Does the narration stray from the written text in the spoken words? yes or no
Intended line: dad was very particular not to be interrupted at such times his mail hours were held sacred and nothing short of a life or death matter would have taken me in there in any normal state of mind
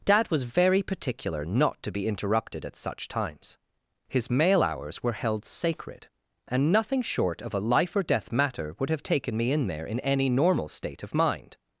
no